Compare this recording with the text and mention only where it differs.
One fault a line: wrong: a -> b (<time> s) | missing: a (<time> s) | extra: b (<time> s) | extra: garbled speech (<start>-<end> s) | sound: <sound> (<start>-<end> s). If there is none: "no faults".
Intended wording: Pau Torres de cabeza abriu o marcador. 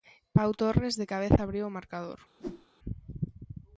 sound: whoosh (2.4-2.7 s)